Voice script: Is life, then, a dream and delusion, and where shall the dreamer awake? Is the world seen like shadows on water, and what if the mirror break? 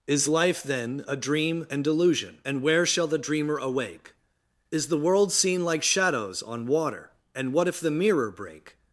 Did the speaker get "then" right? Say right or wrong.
right